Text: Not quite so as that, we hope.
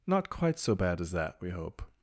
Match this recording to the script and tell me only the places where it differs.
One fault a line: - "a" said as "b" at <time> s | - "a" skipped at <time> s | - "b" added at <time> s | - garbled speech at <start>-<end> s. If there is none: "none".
- "bad" added at 0.7 s